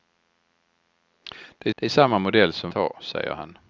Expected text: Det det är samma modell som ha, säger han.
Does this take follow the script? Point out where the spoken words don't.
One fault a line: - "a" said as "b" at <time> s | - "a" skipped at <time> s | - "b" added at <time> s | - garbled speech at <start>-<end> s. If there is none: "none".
none